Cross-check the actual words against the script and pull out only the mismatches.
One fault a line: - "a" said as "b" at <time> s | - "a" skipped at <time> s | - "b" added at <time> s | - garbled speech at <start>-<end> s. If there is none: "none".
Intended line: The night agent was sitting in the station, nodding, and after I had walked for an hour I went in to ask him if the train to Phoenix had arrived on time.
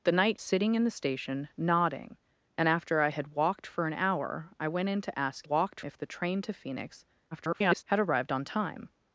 - "agent was" skipped at 0.4 s
- "him" said as "walked" at 5.4 s
- garbled speech at 7.3-7.8 s